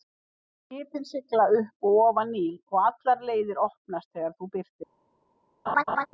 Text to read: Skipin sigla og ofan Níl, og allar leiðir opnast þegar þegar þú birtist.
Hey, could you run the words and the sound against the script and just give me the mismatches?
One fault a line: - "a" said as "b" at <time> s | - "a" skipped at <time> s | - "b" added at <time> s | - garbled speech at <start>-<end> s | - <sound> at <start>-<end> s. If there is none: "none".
- "upp" added at 1.6 s
- "þegar" skipped at 4.4 s
- laugh at 5.7-6.1 s